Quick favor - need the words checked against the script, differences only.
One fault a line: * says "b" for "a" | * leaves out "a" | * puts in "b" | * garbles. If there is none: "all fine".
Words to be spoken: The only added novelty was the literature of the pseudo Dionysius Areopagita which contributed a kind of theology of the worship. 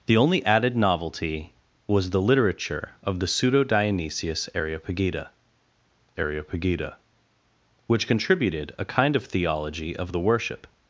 * puts in "Areopagita"